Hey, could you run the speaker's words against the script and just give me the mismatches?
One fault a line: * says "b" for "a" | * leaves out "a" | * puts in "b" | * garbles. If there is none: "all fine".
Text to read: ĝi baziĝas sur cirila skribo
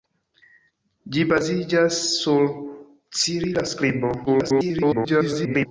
* garbles